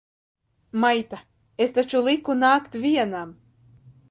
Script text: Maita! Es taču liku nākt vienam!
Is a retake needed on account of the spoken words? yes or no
no